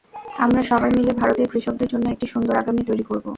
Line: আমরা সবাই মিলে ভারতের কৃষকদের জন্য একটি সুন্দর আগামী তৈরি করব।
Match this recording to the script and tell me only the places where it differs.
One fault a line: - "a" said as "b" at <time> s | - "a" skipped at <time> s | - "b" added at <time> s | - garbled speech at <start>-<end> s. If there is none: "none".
none